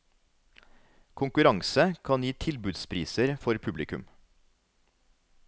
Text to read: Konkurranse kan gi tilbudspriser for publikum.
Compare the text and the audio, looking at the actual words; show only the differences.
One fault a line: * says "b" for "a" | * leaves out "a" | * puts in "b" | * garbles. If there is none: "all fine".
all fine